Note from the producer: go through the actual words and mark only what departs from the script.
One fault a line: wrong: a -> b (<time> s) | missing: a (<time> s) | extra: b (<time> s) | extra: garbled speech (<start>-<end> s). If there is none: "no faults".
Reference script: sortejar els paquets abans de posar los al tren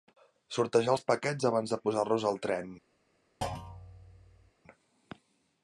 no faults